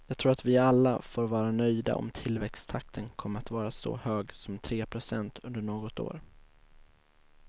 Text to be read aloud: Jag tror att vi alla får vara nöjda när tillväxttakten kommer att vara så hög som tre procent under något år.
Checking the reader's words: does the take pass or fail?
fail